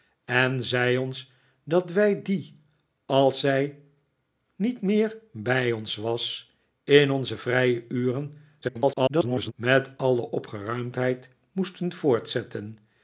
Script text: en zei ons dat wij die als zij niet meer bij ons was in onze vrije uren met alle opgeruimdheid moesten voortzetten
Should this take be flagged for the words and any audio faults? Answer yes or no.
yes